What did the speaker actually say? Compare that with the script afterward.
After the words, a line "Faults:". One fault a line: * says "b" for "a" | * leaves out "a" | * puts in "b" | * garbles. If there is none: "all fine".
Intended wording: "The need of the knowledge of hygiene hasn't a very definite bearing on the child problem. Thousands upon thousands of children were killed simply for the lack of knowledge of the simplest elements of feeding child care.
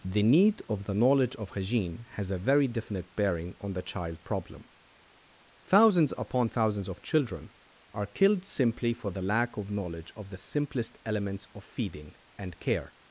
"The need of the knowledge of hygiene has a very definite bearing on the child problem. Thousands upon thousands of children are killed simply for the lack of knowledge of the simplest elements of feeding and care.
Faults:
* says "has" for "hasn't"
* says "are" for "were"
* says "and" for "child"